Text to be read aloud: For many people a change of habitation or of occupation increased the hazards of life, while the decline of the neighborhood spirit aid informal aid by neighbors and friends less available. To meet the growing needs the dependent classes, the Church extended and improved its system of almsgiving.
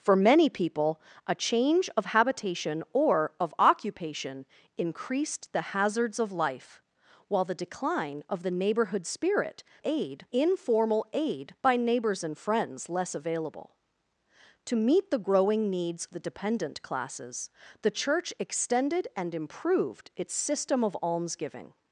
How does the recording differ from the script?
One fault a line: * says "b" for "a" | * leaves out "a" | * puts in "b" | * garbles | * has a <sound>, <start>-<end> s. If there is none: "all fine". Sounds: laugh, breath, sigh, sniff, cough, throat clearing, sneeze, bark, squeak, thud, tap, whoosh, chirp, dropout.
all fine